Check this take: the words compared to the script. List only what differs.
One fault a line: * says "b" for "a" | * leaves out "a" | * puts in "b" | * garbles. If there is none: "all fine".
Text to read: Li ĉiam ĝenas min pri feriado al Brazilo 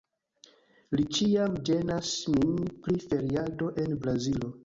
* says "en" for "al"